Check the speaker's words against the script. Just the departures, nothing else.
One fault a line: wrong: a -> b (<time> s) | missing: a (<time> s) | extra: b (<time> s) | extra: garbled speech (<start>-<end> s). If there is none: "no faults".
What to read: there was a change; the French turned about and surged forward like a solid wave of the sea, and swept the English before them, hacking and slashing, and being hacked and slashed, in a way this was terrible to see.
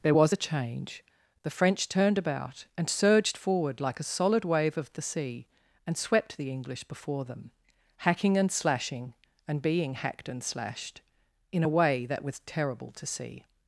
wrong: this -> that (12.1 s)